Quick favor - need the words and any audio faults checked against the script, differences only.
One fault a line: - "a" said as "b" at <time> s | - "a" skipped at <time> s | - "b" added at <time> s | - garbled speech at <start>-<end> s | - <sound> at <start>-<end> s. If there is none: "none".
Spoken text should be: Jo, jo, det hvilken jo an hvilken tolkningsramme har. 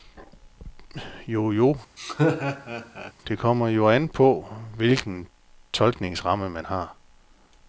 - laugh at 2.0-3.1 s
- "hvilken" said as "kommer" at 3.4 s
- "på" added at 4.1 s
- "man" added at 6.5 s